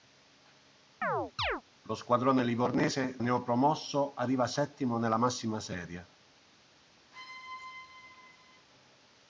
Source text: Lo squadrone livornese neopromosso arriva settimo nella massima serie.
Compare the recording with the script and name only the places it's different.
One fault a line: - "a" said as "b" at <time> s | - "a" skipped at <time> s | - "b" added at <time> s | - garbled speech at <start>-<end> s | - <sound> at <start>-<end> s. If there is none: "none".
- chirp at 1.0-1.6 s
- squeak at 7.1-8.7 s